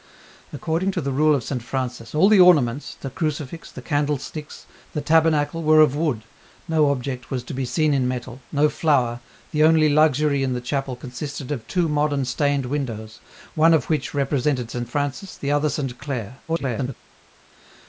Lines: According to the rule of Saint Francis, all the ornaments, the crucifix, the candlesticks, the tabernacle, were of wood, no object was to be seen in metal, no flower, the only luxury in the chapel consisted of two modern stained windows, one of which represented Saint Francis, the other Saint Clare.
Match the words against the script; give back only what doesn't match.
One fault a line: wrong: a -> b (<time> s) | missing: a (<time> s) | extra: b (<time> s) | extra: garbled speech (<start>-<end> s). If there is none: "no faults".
extra: garbled speech (16.5-17.0 s)